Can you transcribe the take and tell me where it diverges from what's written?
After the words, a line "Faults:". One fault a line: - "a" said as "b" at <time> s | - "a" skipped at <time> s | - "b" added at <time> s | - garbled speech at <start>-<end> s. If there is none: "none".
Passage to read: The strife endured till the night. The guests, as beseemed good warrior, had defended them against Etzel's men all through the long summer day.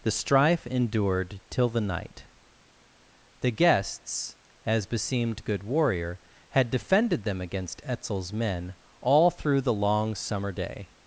The strife endured till the night. The guests, as beseemed good warrior, had defended them against Etzel's men all through the long summer day.
Faults:
none